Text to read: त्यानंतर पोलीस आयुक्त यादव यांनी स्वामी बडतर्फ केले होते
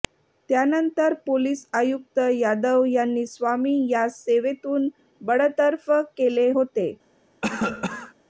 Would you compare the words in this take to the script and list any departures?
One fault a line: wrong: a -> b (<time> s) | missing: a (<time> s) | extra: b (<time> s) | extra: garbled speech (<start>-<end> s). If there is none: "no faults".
extra: यास सेवेतून (3.9 s)